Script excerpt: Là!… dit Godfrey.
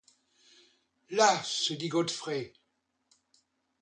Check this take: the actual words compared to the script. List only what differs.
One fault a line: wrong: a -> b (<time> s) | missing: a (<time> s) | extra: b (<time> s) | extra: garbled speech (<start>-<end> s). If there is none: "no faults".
extra: se (1.4 s)